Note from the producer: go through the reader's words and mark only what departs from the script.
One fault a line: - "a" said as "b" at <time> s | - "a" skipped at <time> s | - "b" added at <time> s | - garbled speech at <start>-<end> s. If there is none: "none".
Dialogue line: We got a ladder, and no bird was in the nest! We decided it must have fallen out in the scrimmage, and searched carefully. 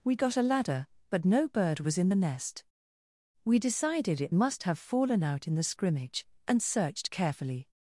- "and" said as "but" at 1.1 s